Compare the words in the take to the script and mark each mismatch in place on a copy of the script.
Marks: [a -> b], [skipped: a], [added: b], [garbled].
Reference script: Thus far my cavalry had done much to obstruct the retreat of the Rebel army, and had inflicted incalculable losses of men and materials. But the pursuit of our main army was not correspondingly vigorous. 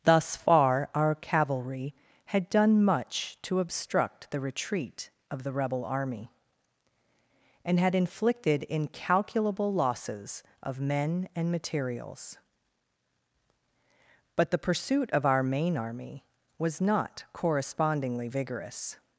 Thus far [my -> our] cavalry had done much to obstruct the retreat of the Rebel army, and had inflicted incalculable losses of men and materials. But the pursuit of our main army was not correspondingly vigorous.